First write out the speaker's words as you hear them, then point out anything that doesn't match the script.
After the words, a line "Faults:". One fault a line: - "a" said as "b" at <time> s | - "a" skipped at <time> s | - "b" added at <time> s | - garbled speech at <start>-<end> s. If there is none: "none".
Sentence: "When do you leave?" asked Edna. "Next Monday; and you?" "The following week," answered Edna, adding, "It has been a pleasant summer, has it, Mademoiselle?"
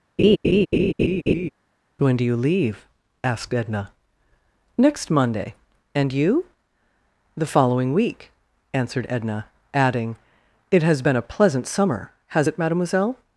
"When do you leave?" asked Edna. "Next Monday; and you?" "The following week," answered Edna, adding, "It has been a pleasant summer, has it, Mademoiselle?"
Faults:
none